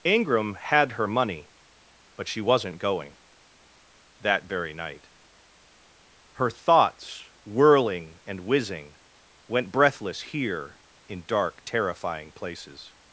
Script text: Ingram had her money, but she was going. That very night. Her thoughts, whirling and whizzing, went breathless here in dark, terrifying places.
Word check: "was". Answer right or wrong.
wrong